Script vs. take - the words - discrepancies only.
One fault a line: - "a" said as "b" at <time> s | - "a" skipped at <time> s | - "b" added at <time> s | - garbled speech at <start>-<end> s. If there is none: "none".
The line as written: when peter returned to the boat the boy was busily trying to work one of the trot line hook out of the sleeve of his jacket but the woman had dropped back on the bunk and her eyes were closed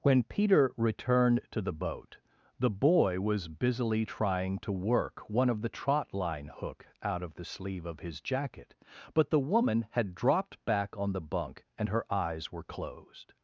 none